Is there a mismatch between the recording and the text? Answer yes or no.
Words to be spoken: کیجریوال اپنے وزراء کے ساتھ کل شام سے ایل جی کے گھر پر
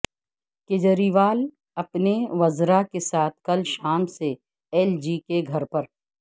no